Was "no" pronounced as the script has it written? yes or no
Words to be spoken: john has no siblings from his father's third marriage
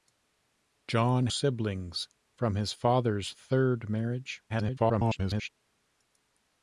no